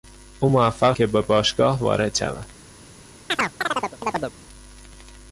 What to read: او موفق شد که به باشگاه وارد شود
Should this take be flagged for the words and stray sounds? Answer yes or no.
yes